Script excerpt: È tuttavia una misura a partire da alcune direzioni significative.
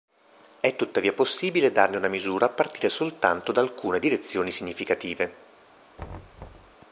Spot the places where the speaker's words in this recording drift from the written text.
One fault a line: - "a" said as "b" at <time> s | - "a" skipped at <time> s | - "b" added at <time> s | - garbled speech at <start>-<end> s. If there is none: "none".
- "possibile darne" added at 1.1 s
- "soltanto" added at 2.9 s